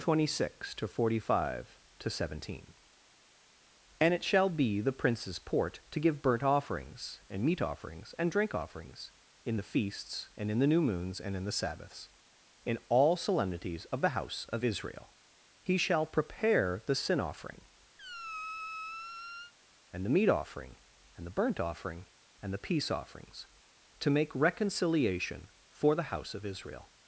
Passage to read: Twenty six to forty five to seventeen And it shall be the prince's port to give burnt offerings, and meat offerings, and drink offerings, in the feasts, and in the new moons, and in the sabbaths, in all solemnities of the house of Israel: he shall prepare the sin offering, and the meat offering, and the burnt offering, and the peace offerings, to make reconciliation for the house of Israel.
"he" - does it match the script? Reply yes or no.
yes